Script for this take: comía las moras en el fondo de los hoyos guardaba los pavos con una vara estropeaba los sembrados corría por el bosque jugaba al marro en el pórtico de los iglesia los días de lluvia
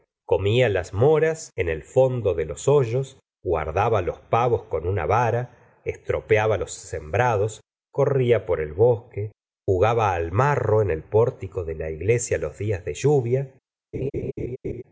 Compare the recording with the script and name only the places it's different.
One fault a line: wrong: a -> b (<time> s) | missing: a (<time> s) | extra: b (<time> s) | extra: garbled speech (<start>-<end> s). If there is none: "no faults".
wrong: los -> la (11.8 s)